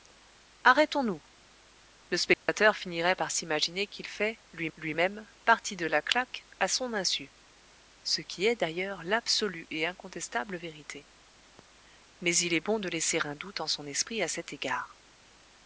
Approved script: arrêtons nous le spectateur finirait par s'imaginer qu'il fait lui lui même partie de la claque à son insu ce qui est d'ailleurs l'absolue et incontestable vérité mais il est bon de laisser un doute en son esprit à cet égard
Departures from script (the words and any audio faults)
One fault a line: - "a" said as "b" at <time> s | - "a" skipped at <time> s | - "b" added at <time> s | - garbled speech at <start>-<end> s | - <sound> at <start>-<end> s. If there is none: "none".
- dropout at 2.3-2.5 s